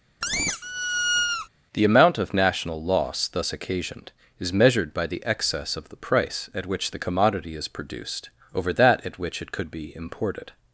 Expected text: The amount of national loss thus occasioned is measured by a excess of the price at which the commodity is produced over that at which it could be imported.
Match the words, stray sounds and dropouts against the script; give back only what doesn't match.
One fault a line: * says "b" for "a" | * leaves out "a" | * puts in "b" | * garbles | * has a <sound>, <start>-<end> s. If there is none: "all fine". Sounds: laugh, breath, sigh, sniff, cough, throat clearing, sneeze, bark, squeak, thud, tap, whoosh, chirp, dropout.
* has a squeak, 0.2-1.5 s
* says "the" for "a"